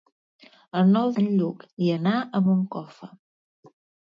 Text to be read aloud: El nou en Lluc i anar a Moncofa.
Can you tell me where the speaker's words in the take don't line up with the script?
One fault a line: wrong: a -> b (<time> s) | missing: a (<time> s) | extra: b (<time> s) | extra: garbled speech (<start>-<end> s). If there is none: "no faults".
no faults